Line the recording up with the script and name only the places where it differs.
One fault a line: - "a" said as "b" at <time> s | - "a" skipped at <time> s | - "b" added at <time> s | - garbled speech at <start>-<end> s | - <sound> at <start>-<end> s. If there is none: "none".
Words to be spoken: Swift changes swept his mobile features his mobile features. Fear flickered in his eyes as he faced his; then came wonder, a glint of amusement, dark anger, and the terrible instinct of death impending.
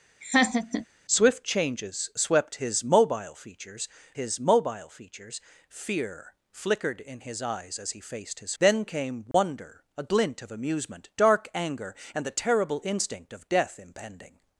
- laugh at 0.2-0.9 s
- dropout at 9.3-9.3 s